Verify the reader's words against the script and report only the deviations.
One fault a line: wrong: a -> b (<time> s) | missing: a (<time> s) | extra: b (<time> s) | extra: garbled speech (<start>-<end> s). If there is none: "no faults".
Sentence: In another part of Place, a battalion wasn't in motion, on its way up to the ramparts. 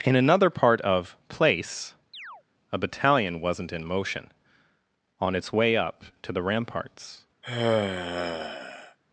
no faults